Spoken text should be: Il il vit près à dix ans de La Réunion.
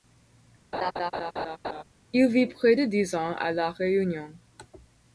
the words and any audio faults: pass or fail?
fail